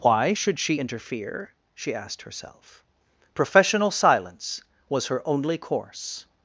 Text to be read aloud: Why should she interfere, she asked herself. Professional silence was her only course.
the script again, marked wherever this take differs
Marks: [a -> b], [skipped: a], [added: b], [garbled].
Why should she interfere, she asked herself. Professional silence was her only course.